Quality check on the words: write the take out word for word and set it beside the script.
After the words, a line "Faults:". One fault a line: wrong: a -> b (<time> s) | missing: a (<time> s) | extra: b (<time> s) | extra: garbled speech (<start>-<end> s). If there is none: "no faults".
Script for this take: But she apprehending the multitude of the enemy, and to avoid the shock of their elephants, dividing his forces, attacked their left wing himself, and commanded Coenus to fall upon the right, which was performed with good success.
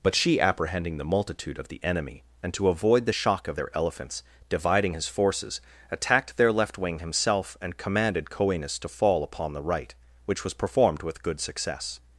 But she apprehending the multitude of the enemy, and to avoid the shock of their elephants, dividing his forces, attacked their left wing himself, and commanded Coenus to fall upon the right, which was performed with good success.
Faults:
no faults